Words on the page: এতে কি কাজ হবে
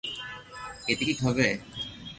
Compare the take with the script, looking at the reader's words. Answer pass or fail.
fail